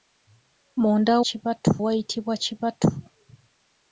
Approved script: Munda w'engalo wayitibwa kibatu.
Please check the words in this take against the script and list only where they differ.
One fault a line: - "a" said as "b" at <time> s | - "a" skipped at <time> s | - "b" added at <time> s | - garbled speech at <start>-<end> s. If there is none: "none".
- "w'engalo" said as "kibatu" at 1.3 s